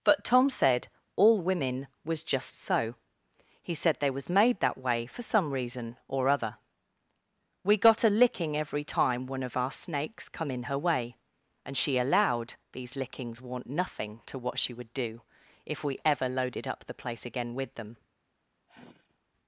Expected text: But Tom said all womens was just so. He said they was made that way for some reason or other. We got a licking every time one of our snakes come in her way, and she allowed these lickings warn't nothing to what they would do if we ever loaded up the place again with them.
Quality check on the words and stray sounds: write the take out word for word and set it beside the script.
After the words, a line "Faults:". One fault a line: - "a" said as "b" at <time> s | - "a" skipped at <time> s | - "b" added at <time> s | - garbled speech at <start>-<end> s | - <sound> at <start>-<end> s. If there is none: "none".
But Tom said all women was just so. He said they was made that way for some reason or other. We got a licking every time one of our snakes come in her way, and she allowed these lickings warn't nothing to what she would do if we ever loaded up the place again with them.
Faults:
- "womens" said as "women" at 1.4 s
- "they" said as "she" at 14.6 s
- sigh at 18.7-19.2 s